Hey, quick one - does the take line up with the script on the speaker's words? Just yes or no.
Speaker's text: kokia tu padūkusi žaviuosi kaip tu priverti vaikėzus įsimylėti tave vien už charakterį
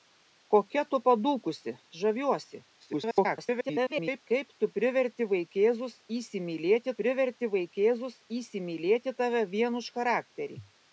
no